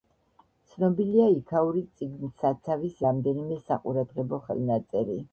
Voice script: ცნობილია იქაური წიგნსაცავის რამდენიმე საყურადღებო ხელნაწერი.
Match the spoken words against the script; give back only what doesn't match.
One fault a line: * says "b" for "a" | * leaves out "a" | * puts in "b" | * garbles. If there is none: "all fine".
all fine